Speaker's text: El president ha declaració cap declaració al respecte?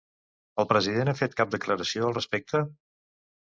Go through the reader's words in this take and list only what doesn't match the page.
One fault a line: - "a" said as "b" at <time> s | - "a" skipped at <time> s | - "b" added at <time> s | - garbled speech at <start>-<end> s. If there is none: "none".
- "declaració" said as "fet" at 1.2 s